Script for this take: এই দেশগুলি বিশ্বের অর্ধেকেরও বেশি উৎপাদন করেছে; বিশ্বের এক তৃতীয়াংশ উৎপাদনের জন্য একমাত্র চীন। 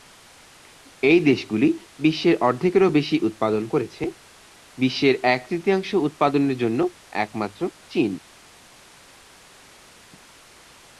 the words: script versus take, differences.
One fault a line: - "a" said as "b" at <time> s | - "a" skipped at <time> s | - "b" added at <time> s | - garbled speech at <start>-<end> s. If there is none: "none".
none